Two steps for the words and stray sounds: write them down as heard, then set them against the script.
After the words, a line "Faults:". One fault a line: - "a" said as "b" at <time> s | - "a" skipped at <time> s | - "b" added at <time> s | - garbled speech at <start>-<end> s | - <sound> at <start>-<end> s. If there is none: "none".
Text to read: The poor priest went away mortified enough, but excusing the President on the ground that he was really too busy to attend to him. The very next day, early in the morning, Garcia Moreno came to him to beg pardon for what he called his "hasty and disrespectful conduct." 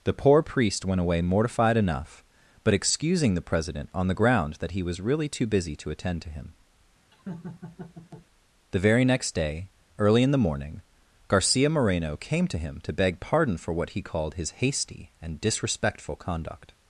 The poor priest went away mortified enough, but excusing the President on the ground that he was really too busy to attend to him. The very next day, early in the morning, Garcia Moreno came to him to beg pardon for what he called his "hasty and disrespectful conduct."
Faults:
- laugh at 7.1-8.3 s